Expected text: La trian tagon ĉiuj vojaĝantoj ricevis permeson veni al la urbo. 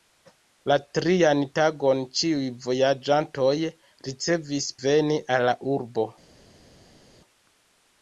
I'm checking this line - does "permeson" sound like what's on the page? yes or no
no